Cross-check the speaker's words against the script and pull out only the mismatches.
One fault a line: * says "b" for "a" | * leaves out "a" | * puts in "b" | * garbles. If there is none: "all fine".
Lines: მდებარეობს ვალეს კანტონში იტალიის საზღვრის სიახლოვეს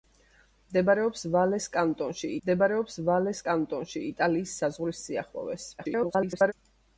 * puts in "მდებარეობს ვალეს კანტონში"
* garbles